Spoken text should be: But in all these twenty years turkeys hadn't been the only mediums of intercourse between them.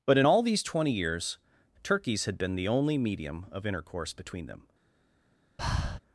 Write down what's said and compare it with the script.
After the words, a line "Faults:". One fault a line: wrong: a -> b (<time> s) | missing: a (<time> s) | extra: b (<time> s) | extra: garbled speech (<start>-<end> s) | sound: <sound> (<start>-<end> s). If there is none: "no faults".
But in all these twenty years turkeys had been the only medium of intercourse between them.
Faults:
wrong: hadn't -> had (2.2 s)
wrong: mediums -> medium (3.0 s)
sound: breath (5.6-6.0 s)